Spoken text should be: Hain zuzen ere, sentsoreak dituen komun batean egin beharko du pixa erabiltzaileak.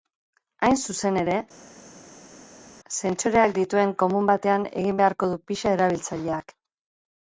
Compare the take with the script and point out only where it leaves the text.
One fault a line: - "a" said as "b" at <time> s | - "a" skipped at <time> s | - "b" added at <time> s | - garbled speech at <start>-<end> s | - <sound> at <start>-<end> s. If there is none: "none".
none